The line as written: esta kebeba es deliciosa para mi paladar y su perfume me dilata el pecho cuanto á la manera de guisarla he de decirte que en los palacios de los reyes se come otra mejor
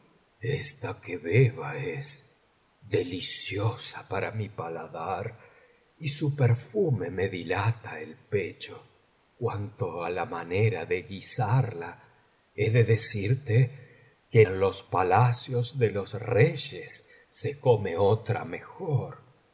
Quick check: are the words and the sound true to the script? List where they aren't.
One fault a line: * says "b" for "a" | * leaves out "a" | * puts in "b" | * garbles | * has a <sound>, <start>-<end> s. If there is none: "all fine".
all fine